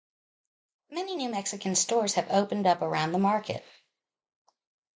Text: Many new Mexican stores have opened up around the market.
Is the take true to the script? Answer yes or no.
yes